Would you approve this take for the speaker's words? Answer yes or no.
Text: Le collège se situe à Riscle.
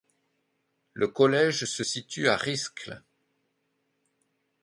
yes